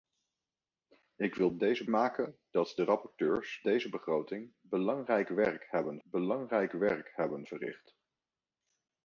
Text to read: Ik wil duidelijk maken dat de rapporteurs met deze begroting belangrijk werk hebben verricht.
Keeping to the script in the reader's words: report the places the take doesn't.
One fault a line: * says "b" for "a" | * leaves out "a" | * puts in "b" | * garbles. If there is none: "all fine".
* says "deze" for "duidelijk"
* leaves out "met"
* puts in "belangrijk werk hebben"